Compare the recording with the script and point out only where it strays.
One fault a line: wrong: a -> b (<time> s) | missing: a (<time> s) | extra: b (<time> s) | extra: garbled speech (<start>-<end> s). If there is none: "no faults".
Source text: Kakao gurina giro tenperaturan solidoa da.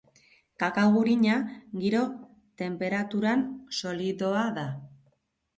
no faults